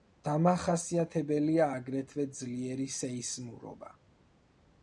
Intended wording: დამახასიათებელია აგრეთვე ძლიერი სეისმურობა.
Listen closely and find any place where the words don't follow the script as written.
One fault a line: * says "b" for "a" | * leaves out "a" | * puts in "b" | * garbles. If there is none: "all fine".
all fine